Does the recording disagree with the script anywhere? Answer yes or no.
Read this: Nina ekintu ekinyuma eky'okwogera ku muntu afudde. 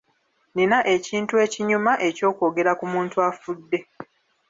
no